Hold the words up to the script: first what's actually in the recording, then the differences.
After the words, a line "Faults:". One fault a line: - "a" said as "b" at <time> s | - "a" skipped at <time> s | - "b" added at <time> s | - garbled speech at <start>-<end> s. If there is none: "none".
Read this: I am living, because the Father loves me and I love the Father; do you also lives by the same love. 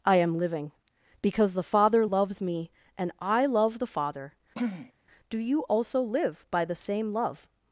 I am living, because the Father loves me and I love the Father; do you also live by the same love.
Faults:
- "lives" said as "live" at 6.0 s